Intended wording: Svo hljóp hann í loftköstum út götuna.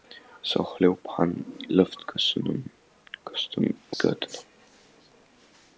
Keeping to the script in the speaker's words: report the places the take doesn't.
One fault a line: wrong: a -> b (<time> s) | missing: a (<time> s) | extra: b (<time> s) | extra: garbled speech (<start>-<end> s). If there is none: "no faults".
missing: út (3.7 s)